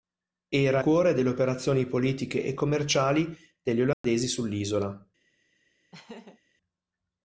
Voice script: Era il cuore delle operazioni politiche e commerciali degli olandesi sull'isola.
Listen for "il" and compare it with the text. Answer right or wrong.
wrong